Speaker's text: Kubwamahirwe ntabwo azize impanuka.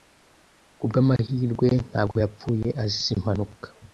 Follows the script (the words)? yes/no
no